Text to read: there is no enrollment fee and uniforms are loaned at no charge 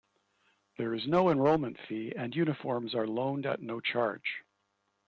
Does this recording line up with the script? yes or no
yes